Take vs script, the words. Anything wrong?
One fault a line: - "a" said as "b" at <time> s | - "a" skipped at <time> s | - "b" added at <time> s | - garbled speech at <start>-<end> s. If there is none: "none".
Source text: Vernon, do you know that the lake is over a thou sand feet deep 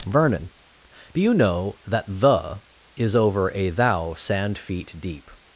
- "lake" skipped at 2.6 s